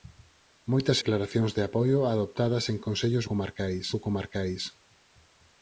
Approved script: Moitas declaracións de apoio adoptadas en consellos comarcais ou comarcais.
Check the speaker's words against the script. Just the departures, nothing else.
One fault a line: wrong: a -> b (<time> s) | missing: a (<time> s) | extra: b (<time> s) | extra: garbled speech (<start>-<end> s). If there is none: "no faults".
no faults